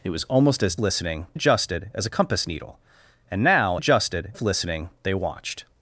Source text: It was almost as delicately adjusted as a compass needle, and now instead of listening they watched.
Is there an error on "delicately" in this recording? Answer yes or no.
yes